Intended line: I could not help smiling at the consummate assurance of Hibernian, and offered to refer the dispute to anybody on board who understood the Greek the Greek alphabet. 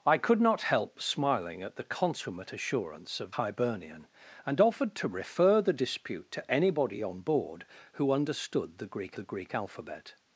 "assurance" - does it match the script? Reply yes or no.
yes